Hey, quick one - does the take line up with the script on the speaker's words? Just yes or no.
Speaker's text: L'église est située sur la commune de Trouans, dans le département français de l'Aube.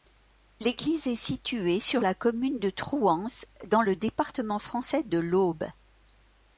yes